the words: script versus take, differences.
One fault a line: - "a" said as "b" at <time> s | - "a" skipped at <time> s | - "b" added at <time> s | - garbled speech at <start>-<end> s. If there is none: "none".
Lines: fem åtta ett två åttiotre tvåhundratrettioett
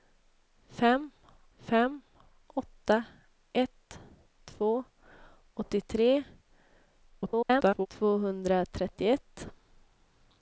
- "fem" added at 1.6 s
- garbled speech at 7.1-7.9 s